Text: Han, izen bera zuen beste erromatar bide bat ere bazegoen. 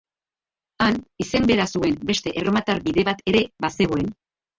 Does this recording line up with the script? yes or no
yes